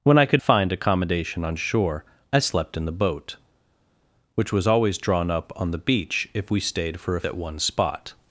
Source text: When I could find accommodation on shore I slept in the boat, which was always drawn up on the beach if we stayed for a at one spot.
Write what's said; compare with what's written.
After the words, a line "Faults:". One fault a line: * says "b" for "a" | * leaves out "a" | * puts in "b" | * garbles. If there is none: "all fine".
When I could find accommodation on shore I slept in the boat, which was always drawn up on the beach if we stayed for a at one spot.
Faults:
all fine